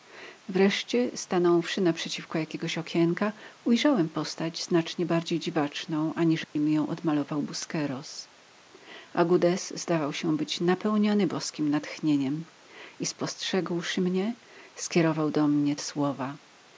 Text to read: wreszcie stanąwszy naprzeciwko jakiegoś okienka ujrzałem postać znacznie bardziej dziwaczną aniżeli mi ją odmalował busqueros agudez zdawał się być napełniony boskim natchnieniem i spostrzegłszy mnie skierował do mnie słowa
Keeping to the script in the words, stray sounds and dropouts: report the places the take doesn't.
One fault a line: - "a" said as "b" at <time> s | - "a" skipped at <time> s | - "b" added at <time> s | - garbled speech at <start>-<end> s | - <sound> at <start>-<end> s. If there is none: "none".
- dropout at 6.4-6.6 s